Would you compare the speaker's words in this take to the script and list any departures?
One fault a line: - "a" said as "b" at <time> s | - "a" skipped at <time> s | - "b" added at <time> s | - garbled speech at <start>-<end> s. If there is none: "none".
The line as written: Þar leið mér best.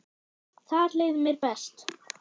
none